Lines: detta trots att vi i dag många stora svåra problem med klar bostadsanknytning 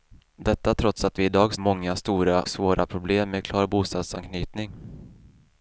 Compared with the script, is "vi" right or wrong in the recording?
right